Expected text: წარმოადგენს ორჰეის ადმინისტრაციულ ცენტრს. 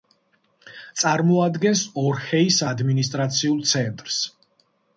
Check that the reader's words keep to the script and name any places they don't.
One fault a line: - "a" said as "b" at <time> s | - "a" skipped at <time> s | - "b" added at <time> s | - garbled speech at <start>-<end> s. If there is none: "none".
none